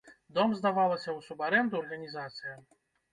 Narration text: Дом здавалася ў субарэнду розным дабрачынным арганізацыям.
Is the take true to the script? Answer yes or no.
no